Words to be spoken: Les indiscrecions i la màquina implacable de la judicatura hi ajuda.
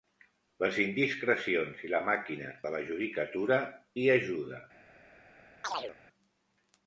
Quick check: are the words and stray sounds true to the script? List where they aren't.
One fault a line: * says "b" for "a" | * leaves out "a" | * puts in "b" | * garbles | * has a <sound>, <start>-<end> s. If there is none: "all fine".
* leaves out "implacable"
* has a chirp, 5.6-6.0 s